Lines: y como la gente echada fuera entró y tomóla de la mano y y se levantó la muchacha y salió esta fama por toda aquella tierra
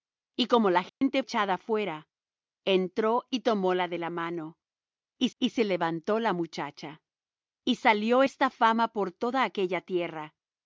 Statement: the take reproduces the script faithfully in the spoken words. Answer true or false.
true